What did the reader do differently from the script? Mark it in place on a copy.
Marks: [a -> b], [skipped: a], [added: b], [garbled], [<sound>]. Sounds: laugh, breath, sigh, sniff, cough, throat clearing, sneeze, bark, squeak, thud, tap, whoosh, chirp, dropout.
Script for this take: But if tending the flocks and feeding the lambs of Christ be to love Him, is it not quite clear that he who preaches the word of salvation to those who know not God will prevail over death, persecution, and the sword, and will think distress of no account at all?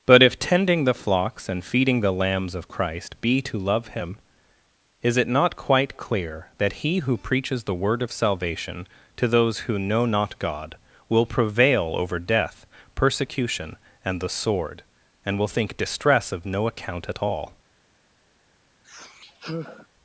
But if tending the flocks and feeding the lambs of Christ be to love Him, is it not quite clear that he who preaches the word of salvation to those who know not God will prevail over death, persecution, and the sword, and will think distress of no account at all? [sigh]